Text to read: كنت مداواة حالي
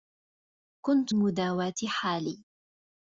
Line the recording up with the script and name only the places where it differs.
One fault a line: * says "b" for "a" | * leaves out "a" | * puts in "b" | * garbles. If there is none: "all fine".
all fine